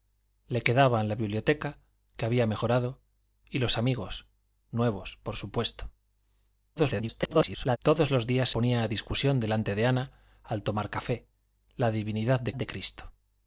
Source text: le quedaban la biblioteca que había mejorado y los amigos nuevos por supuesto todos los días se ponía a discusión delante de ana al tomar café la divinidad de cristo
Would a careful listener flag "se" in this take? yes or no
yes